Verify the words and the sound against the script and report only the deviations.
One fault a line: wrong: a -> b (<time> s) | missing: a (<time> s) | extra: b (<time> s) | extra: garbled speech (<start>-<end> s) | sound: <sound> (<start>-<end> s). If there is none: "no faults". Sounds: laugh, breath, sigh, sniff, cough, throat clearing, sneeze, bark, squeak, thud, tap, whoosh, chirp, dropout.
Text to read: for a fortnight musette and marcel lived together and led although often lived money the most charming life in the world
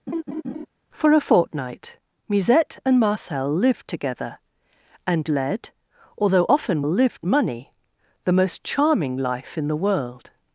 sound: laugh (0.1-0.7 s)